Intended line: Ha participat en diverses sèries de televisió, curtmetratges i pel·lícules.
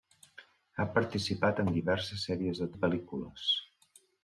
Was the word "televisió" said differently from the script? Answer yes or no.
yes